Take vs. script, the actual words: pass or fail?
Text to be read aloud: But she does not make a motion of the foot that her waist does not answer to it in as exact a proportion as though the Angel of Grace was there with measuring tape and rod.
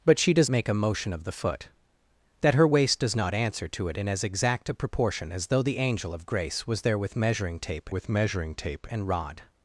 fail